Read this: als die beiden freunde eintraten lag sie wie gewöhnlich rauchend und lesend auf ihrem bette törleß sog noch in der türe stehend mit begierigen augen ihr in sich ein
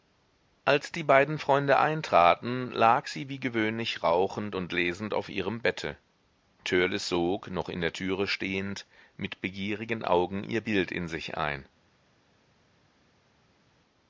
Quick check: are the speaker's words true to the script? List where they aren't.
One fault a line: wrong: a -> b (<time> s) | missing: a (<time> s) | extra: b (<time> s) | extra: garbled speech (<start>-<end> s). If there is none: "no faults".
extra: bild (10.6 s)